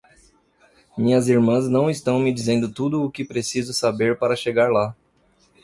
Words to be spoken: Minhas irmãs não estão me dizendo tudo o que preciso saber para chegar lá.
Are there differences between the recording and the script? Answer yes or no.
no